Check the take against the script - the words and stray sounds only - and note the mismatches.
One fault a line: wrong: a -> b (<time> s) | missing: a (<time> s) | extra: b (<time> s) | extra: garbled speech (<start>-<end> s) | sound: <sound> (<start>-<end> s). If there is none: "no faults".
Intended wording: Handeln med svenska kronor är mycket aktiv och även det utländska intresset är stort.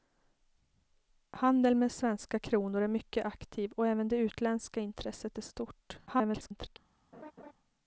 extra: garbled speech (6.1-6.8 s)
sound: laugh (7.1-7.5 s)